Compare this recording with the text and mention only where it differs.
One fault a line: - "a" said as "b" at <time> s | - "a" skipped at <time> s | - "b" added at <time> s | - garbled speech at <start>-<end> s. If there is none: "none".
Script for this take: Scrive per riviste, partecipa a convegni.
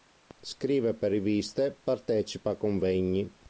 none